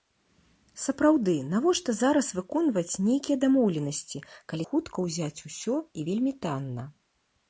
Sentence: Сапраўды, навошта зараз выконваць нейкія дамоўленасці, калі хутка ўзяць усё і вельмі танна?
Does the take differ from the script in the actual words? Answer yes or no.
no